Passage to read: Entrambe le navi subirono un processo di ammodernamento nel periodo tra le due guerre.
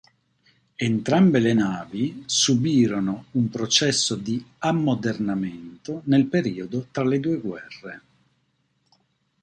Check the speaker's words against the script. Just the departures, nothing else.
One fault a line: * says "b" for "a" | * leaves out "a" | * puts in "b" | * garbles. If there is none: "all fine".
all fine